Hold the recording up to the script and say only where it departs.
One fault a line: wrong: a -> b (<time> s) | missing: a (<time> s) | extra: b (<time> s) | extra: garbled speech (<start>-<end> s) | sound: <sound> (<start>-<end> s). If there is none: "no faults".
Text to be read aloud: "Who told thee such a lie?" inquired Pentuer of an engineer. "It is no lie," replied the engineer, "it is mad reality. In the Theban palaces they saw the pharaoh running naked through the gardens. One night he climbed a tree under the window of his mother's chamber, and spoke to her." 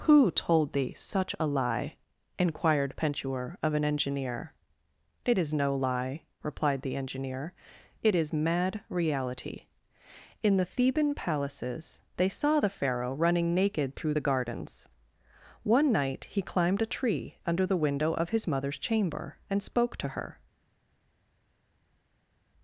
no faults